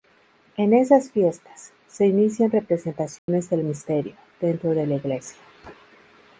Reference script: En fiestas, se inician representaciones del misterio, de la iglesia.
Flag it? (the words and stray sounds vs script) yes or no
yes